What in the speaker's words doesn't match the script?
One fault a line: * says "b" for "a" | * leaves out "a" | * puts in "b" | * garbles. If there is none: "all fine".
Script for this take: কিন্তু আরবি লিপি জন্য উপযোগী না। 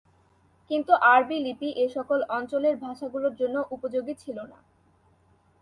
* puts in "এসকল অঞ্চলের ভাষাগুলোর"
* puts in "ছিল"